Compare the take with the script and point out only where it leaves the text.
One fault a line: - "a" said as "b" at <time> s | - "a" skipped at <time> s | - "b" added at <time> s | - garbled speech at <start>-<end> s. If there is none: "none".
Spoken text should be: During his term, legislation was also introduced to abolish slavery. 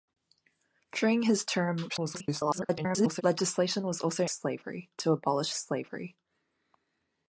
- garbled speech at 1.9-3.2 s
- "introduced" said as "slavery" at 4.2 s